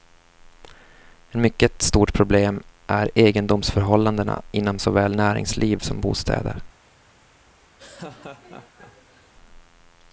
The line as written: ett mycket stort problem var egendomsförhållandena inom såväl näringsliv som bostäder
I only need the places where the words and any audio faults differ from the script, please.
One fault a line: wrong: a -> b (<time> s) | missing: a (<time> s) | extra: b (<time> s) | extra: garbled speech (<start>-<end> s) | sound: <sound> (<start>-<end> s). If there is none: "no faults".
wrong: var -> är (2.9 s)
sound: laugh (7.8-9.3 s)